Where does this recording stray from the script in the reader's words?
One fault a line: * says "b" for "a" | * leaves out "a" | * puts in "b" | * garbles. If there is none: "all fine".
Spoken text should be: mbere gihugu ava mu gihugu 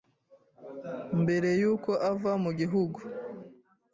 * says "y'uko" for "gihugu"